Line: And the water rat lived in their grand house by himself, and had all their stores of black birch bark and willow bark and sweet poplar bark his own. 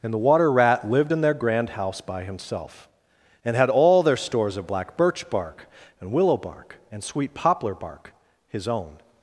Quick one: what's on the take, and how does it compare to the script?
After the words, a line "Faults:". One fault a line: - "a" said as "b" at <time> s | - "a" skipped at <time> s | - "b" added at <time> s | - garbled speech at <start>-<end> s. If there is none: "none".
And the water rat lived in their grand house by himself, and had all their stores of black birch bark and willow bark and sweet poplar bark his own.
Faults:
none